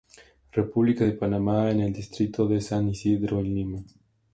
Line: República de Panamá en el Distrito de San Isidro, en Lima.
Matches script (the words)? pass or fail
pass